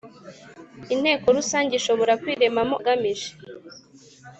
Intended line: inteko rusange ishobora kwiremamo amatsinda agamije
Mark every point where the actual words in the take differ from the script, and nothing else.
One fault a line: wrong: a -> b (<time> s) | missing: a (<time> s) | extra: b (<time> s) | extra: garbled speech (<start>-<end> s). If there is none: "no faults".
missing: amatsinda (2.7 s)